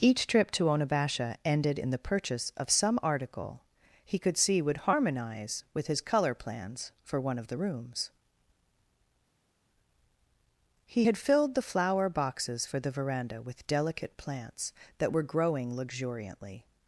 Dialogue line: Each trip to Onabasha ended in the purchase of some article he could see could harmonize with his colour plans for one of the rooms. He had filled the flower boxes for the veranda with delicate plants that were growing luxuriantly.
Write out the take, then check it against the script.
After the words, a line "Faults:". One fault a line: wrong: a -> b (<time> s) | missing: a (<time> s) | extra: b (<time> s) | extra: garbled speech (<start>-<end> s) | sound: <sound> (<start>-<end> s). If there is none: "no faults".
Each trip to Onabasha ended in the purchase of some article he could see would harmonize with his colour plans for one of the rooms. He had filled the flower boxes for the veranda with delicate plants that were growing luxuriantly.
Faults:
wrong: could -> would (4.6 s)